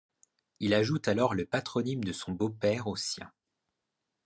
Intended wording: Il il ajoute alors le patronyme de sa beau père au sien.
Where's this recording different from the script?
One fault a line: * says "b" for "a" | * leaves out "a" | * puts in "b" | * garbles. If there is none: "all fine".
* leaves out "il"
* says "son" for "sa"